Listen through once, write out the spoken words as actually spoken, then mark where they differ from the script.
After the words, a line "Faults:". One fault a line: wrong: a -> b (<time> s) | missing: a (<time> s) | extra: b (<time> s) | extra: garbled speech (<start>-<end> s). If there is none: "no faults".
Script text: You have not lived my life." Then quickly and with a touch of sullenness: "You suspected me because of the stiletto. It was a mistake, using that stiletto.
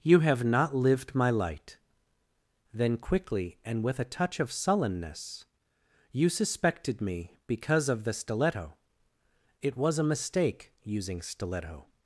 You have not lived my light." Then quickly and with a touch of sullenness: "You suspected me because of the stiletto. It was a mistake, using stiletto.
Faults:
wrong: life -> light (1.3 s)
missing: that (11.2 s)